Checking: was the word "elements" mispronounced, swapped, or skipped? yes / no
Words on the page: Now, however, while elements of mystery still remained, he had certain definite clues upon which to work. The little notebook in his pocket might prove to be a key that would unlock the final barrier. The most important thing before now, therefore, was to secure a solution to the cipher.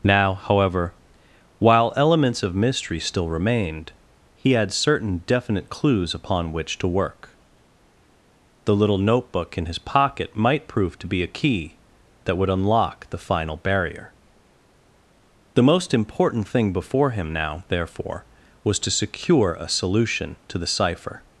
no